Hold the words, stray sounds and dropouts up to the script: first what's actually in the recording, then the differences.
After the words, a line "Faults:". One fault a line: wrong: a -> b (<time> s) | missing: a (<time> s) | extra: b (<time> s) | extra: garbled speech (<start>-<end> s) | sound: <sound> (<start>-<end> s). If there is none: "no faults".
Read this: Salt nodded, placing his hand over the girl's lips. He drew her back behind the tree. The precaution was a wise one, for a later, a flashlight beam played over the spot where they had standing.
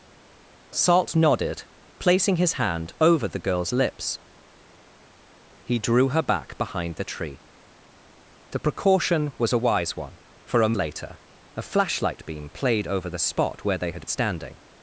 Salt nodded, placing his hand over the girl's lips. He drew her back behind the tree. The precaution was a wise one, for a later, a flashlight beam played over the spot where they had standing.
Faults:
no faults